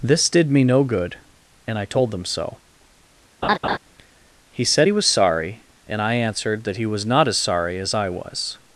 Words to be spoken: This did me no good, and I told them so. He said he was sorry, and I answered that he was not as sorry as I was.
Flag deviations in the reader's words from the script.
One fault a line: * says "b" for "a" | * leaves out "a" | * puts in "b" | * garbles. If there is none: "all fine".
all fine